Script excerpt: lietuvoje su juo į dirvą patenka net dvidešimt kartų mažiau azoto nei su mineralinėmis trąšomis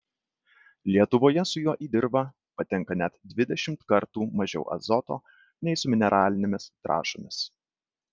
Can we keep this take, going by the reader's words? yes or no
yes